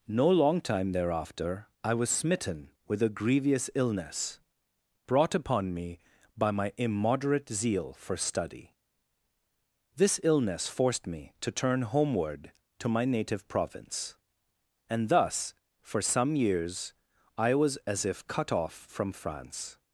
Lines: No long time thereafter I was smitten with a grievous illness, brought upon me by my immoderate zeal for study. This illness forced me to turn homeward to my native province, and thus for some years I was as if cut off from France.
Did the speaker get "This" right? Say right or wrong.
right